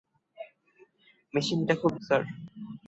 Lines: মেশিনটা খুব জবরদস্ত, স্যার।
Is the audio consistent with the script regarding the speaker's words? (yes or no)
no